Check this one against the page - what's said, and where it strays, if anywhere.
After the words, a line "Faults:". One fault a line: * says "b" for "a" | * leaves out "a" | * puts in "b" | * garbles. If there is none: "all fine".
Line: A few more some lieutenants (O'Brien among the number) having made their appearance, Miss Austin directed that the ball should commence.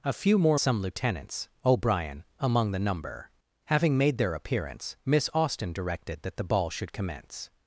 A few more some lieutenants (O'Brien among the number) having made their appearance, Miss Austin directed that the ball should commence.
Faults:
all fine